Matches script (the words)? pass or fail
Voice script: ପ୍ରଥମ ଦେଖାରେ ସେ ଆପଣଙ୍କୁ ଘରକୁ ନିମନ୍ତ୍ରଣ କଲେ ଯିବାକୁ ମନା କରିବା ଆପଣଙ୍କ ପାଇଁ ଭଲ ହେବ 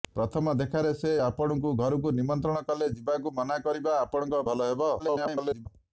fail